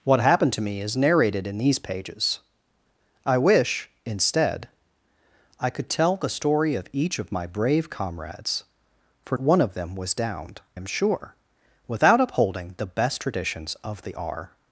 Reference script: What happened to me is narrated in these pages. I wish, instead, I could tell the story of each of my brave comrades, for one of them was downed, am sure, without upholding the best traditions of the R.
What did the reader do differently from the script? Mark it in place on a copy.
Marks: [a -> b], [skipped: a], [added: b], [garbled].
What happened to me is narrated in these pages. I wish, instead, I could tell the story of each of my brave comrades, for one of them was downed, am sure, without upholding the best traditions of the R.